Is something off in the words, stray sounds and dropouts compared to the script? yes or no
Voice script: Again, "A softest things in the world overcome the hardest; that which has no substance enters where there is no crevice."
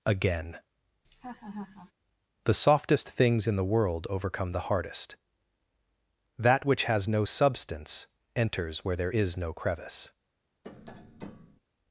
yes